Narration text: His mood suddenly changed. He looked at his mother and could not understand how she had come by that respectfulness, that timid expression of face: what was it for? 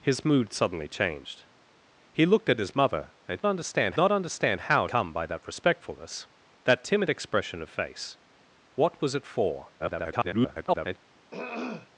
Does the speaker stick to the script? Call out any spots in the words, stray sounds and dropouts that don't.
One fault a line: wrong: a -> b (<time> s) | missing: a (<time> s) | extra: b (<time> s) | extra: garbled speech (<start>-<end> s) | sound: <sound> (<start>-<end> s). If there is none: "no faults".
wrong: could -> understand (3.5 s)
missing: she had (4.9 s)
extra: garbled speech (9.8-11.0 s)
sound: throat clearing (11.3-11.9 s)